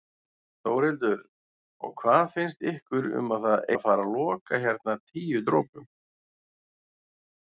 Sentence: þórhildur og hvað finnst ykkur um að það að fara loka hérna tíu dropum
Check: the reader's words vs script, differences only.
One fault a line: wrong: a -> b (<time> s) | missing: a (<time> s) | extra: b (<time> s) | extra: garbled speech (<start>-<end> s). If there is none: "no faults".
no faults